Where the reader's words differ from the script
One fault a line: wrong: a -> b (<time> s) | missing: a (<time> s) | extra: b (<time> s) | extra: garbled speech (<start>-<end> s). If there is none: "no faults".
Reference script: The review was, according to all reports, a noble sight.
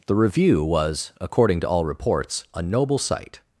no faults